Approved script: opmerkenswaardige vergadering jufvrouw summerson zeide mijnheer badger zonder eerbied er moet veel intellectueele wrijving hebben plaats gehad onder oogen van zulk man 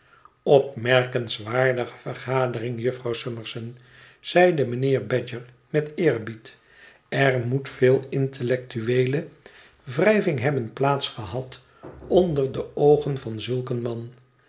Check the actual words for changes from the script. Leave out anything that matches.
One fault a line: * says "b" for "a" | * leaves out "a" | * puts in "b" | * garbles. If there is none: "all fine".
* says "met" for "zonder"
* puts in "de"
* puts in "een"